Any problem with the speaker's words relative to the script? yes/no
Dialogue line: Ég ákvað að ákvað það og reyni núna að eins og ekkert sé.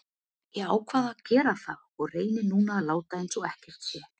yes